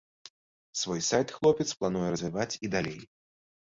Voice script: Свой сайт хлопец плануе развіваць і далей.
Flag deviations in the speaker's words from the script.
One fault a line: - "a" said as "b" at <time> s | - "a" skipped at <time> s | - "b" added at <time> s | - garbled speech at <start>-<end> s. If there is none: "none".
none